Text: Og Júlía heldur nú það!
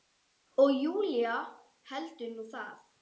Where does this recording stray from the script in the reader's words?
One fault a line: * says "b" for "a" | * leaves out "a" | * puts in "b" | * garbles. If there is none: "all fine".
all fine